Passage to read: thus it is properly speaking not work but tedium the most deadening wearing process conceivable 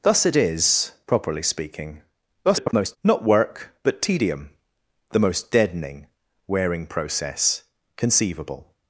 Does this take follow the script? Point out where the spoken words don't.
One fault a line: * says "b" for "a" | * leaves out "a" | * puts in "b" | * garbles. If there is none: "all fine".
* garbles